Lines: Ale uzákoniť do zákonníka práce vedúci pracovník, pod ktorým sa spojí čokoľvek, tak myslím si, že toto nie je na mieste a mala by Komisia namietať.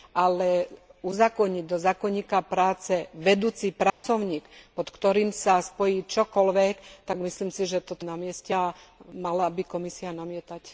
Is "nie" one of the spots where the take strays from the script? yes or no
yes